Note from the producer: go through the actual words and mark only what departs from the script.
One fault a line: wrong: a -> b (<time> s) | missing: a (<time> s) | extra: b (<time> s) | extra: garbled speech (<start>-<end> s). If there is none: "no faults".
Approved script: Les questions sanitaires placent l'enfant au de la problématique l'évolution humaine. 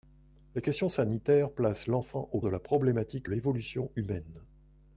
no faults